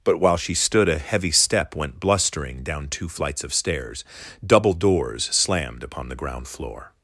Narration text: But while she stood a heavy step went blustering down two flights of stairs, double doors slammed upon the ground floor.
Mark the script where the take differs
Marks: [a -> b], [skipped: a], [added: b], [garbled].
But while she stood a heavy step went blustering down two flights of stairs, double doors slammed upon the ground floor.